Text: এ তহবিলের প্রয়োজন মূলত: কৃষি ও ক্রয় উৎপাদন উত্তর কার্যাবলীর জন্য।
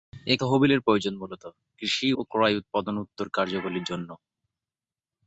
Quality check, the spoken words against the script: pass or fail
pass